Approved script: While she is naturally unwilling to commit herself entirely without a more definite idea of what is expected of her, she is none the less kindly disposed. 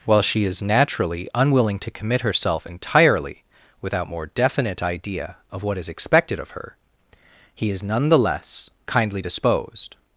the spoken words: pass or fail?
fail